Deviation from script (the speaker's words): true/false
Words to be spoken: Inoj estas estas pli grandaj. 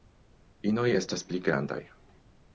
true